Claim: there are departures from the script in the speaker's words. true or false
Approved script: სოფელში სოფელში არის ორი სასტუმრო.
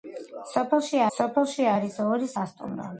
false